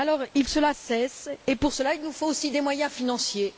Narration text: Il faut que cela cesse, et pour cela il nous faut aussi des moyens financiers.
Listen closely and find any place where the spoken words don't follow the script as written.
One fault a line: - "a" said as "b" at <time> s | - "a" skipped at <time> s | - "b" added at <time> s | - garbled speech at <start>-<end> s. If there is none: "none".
- "faut" skipped at 0.5 s